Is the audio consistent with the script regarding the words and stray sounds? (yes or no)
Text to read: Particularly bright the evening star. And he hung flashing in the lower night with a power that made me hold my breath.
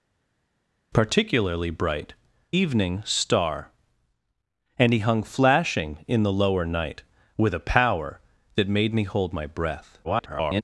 no